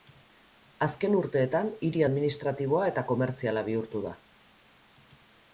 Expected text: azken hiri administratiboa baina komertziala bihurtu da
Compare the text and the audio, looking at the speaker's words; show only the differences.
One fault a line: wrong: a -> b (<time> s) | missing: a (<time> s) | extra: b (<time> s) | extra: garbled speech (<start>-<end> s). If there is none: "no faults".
extra: urteetan (1.2 s)
wrong: baina -> eta (2.9 s)